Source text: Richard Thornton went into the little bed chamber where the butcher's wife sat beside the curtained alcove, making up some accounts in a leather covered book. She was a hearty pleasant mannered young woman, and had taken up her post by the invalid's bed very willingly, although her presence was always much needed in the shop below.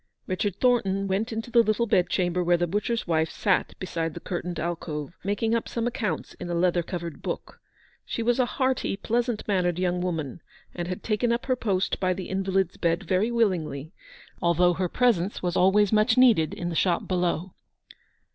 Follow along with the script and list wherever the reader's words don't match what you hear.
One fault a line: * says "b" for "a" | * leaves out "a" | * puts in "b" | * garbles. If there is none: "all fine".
all fine